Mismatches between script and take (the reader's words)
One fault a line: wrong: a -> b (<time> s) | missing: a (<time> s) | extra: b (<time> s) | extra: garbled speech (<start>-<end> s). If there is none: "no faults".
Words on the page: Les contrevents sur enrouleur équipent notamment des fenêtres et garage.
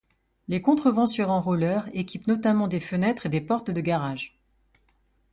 extra: des portes de (3.3 s)